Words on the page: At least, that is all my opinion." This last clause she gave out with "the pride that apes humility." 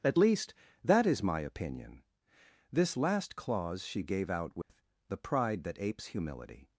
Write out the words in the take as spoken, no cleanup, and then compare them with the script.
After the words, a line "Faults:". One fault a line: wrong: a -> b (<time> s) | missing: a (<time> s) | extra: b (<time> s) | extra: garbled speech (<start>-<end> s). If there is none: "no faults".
At least, that is my opinion." This last clause she gave out with "the pride that apes humility."
Faults:
missing: all (1.2 s)